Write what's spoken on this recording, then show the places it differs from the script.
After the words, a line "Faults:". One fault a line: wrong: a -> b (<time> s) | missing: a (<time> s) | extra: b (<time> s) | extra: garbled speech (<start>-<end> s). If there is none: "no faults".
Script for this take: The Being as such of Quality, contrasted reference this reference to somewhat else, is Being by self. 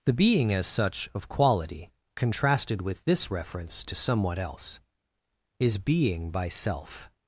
The Being as such of Quality, contrasted with this reference to somewhat else, is Being by self.
Faults:
wrong: reference -> with (2.8 s)